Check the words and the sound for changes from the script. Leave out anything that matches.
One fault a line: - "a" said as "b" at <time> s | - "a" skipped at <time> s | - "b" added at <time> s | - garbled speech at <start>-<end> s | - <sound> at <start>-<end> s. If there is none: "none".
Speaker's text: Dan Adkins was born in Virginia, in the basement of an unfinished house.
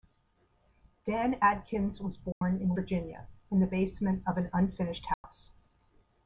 - dropout at 2.3-2.4 s
- dropout at 5.1-5.2 s